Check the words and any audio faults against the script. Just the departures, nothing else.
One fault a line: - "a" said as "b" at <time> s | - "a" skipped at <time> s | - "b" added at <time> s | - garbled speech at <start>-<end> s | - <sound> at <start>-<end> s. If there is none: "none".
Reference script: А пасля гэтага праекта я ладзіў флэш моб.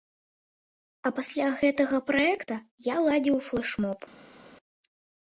none